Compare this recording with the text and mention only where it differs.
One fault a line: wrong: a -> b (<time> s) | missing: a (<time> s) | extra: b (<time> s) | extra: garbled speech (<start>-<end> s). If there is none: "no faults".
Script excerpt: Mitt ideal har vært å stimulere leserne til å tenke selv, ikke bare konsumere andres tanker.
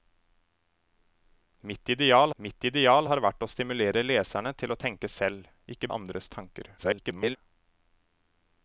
extra: mitt ideal (2.4 s)
missing: bare konsumere (5.9 s)
extra: garbled speech (6.8-7.4 s)